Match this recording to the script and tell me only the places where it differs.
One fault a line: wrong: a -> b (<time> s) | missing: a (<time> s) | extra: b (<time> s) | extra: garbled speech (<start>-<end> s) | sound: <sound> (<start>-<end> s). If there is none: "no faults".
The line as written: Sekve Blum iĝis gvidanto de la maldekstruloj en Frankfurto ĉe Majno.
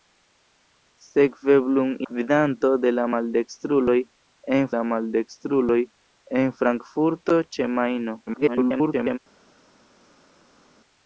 missing: iĝis (1.9 s)
extra: la maldekstruloj en (4.7 s)
extra: garbled speech (8.3-9.2 s)